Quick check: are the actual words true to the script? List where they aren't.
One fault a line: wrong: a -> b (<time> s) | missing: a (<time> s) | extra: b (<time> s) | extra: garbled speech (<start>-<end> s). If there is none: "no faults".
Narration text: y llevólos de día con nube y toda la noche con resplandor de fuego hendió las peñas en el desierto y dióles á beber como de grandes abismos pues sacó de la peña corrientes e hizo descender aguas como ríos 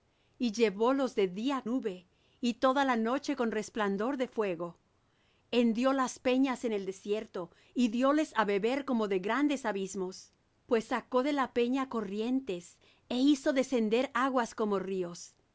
missing: con (1.6 s)